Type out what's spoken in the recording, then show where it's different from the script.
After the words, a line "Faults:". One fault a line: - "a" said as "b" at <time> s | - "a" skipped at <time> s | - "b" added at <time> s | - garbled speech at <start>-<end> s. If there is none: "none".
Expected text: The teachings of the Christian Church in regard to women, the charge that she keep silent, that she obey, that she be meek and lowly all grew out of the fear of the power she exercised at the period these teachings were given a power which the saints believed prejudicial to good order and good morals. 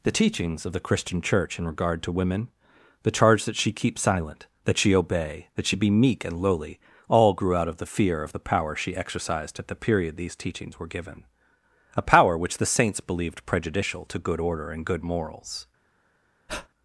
The teachings of the Christian Church in regard to women, the charge that she keep silent, that she obey, that she be meek and lowly all grew out of the fear of the power she exercised at the period these teachings were given a power which the saints believed prejudicial to good order and good morals.
Faults:
none